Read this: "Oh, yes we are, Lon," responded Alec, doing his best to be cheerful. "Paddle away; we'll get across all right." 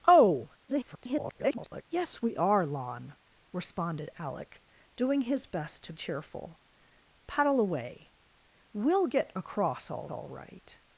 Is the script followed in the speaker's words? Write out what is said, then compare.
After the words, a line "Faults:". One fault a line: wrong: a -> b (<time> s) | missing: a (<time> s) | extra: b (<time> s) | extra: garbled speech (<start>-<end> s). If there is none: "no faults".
"Oh, [garbled] yes we are, Lon," responded Alec, doing his best to cheerful. "Paddle away; we'll get across all all right."
Faults:
extra: garbled speech (0.7-1.8 s)
missing: be (5.9 s)
extra: all (10.1 s)